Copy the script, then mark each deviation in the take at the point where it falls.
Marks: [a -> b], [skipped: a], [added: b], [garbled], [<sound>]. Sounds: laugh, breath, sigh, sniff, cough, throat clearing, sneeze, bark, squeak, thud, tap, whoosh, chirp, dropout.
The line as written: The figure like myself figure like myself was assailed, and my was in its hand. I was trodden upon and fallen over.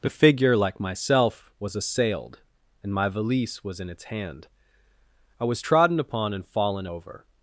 The figure like myself [skipped: figure like myself] was assailed, and my [added: valise] was in its hand. I was trodden upon and fallen over.